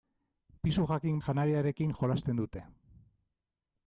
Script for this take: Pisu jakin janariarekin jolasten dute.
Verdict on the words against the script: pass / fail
pass